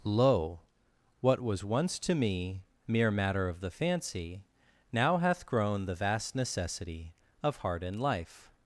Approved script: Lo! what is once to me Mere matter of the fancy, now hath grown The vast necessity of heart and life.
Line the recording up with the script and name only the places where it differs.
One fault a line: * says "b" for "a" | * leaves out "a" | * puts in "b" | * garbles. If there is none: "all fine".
* says "was" for "is"